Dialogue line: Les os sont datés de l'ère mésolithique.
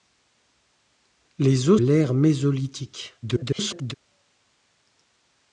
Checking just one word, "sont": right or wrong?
wrong